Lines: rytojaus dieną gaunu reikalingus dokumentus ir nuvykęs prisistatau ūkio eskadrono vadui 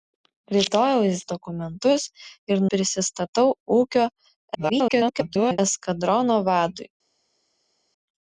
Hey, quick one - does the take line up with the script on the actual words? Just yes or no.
no